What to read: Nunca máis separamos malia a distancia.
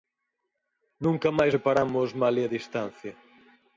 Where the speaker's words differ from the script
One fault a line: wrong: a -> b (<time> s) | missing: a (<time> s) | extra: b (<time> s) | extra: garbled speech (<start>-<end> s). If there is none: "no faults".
no faults